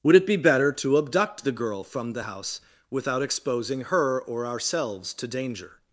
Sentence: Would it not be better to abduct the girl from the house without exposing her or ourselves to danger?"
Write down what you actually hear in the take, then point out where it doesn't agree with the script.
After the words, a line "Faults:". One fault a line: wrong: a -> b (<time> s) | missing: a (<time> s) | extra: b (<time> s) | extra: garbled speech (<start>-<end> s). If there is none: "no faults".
Would it be better to abduct the girl from the house without exposing her or ourselves to danger?"
Faults:
missing: not (0.2 s)